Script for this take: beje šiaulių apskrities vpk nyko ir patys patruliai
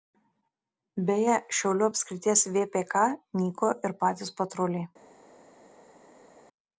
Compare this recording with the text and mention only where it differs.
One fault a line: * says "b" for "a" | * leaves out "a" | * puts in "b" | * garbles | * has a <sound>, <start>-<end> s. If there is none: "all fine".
all fine